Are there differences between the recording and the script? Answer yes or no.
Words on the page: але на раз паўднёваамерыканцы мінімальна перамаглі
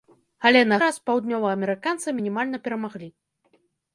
no